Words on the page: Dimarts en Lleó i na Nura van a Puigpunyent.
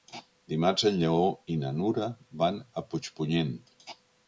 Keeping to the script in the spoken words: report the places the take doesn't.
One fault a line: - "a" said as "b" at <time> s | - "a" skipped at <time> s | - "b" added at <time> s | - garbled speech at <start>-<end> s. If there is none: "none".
none